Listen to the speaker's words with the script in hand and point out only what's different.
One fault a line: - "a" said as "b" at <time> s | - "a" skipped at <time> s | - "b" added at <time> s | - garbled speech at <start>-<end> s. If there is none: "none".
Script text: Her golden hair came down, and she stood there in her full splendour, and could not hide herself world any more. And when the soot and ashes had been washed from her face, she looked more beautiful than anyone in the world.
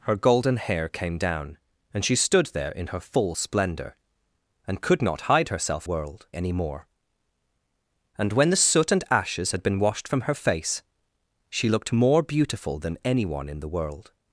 none